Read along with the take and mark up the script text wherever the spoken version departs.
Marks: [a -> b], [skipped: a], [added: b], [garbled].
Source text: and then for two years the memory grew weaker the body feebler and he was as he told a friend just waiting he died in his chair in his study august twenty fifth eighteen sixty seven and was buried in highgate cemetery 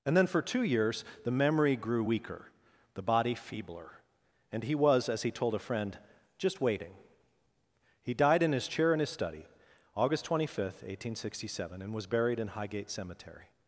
and then for two years the memory grew weaker the body feebler and he was as he told a friend just waiting he died in his chair in his study august twenty fifth eighteen sixty seven and was buried in highgate cemetery